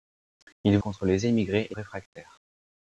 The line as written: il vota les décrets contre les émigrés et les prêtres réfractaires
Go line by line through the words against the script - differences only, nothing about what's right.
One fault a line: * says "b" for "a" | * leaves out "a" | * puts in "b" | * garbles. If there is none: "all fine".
* leaves out "vota les décrets"
* leaves out "les prêtres"